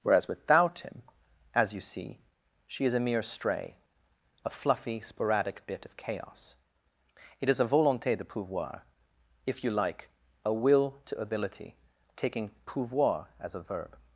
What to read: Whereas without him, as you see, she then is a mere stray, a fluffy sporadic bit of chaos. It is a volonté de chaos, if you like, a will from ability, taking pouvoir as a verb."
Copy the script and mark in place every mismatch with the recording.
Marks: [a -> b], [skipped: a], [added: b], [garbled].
Whereas without him, as you see, she [skipped: then] is a mere stray, a fluffy sporadic bit of chaos. It is a volonté de [chaos, -> pouvoir] if you like, a will [from -> to] ability, taking pouvoir as a verb."